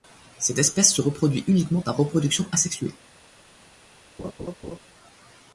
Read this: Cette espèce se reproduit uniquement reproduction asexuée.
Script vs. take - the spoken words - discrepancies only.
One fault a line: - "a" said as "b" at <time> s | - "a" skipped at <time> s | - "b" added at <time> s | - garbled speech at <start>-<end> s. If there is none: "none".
- "par" added at 1.8 s